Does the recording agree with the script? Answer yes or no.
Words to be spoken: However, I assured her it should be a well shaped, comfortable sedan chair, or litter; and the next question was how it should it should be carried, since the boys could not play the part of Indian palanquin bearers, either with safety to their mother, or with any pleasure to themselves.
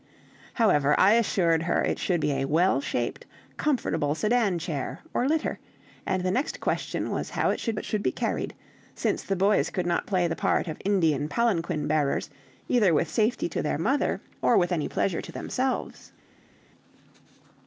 yes